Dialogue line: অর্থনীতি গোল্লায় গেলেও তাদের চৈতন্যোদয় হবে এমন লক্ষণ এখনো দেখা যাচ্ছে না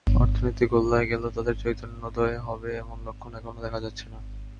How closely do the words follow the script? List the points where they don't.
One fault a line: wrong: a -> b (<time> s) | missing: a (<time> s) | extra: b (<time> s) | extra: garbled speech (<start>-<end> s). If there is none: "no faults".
no faults